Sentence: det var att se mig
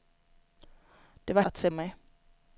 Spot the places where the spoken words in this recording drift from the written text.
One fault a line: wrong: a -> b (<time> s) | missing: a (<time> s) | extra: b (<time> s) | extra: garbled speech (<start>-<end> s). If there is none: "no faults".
no faults